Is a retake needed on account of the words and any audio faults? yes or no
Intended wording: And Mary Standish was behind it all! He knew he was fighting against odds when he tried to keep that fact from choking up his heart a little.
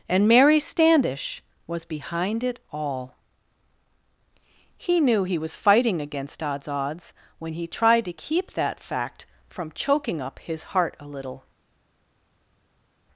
yes